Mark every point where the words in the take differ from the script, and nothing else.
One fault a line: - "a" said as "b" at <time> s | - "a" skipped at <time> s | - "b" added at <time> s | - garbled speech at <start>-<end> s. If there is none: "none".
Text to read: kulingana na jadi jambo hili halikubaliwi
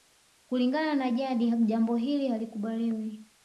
none